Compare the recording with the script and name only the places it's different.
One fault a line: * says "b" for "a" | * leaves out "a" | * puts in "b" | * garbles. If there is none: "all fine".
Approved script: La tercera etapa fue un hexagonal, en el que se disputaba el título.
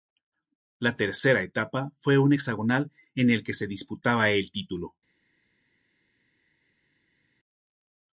all fine